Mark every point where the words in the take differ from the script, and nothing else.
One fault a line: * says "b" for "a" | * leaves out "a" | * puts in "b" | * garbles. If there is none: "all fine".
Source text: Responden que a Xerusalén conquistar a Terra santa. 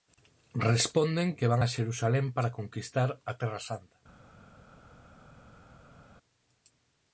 * puts in "van"
* puts in "para"